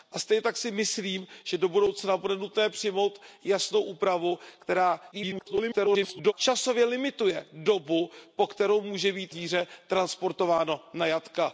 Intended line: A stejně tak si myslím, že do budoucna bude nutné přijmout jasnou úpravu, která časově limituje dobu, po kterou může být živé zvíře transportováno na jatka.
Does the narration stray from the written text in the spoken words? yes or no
yes